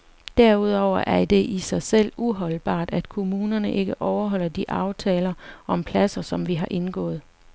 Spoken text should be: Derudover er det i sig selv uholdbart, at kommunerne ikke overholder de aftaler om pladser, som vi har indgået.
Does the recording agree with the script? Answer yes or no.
yes